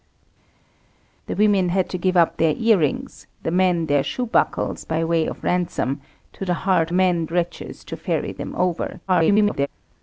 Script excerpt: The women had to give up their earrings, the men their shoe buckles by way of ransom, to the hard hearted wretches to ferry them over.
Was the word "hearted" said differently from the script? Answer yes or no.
yes